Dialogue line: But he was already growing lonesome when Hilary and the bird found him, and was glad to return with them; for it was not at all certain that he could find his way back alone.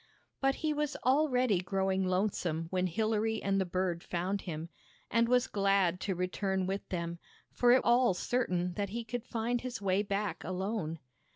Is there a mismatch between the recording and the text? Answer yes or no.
yes